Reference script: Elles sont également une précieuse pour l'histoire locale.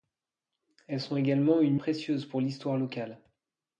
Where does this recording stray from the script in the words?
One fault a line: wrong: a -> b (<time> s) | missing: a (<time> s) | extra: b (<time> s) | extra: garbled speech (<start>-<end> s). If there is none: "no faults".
no faults